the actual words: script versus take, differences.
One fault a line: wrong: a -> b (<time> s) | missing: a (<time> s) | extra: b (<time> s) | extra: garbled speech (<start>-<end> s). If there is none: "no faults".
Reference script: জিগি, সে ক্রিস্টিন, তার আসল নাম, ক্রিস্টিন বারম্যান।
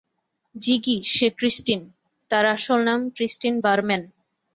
no faults